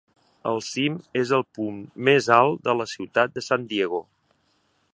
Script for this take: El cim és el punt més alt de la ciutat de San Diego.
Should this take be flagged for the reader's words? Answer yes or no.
no